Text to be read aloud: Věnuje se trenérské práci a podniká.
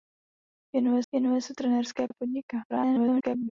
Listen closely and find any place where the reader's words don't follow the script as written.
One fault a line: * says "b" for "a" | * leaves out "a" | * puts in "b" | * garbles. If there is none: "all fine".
* puts in "věnuje"
* leaves out "práci"
* garbles